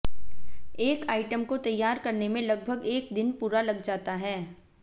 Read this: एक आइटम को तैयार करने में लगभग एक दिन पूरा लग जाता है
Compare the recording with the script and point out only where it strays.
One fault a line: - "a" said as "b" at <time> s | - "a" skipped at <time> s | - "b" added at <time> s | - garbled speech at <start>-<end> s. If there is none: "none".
none